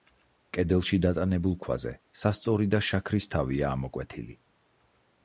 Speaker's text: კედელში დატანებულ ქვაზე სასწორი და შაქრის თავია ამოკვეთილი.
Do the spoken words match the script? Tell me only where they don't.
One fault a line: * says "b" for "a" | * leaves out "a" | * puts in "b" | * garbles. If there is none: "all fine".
all fine